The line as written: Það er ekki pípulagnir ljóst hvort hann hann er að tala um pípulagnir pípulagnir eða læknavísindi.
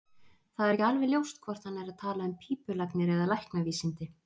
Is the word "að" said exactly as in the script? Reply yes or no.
yes